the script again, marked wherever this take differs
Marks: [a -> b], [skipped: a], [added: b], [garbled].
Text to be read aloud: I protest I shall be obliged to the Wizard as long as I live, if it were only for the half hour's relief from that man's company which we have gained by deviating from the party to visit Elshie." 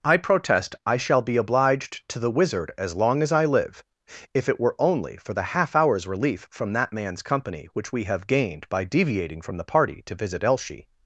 I protest I shall be obliged to the Wizard as long as I live, if it were only for the half hour's relief from that man's company which we have gained by deviating from the party to visit Elshie."